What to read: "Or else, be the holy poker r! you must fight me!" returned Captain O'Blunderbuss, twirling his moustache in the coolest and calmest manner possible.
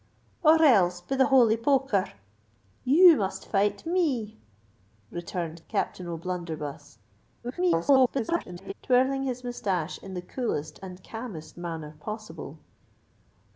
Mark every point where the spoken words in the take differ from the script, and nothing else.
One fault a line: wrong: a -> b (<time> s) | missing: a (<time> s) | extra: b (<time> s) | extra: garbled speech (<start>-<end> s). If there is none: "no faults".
extra: garbled speech (7.4-8.7 s)